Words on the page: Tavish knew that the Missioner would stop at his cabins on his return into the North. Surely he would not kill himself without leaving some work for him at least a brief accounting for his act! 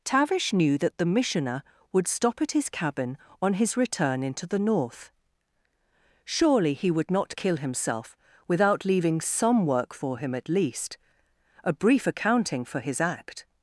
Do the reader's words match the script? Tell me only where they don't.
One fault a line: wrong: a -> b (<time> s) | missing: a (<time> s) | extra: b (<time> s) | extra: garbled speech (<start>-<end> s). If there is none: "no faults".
wrong: cabins -> cabin (2.7 s)